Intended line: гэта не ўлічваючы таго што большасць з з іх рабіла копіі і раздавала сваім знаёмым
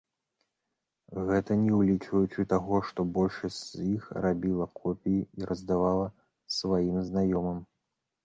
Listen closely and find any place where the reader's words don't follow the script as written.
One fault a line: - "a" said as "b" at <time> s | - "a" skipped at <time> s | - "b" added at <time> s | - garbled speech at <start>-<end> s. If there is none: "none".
- "з" skipped at 3.9 s